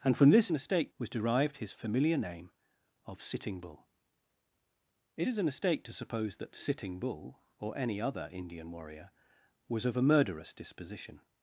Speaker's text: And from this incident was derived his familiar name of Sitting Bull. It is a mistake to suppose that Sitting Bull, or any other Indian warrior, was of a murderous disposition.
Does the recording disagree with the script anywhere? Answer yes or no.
yes